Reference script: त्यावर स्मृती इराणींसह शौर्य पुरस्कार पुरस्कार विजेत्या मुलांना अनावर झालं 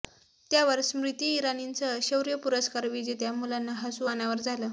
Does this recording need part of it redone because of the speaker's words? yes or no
yes